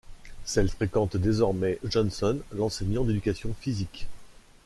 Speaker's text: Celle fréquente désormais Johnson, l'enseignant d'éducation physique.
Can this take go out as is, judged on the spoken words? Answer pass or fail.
pass